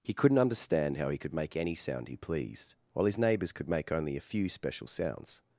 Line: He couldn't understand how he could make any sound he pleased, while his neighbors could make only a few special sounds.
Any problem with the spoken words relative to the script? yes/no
no